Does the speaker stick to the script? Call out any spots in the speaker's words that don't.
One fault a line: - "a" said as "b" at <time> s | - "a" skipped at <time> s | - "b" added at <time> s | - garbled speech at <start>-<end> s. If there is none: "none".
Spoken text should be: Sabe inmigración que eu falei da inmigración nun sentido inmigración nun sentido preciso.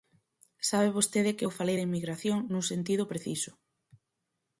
- "inmigración" said as "vostede" at 1.0 s
- "inmigración nun sentido" skipped at 3.0 s